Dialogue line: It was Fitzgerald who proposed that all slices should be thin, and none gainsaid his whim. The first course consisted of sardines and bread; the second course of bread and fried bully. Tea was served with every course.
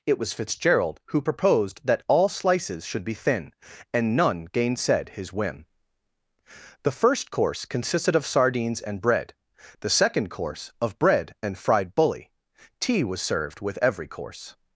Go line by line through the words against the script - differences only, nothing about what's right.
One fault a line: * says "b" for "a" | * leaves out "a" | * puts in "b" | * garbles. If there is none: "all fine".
all fine